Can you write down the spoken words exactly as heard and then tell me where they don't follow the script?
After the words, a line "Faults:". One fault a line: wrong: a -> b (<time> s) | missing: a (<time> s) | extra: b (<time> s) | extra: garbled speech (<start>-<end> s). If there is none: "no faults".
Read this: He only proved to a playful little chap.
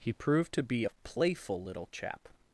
He proved to be a playful little chap.
Faults:
missing: only (0.1 s)
extra: be (0.6 s)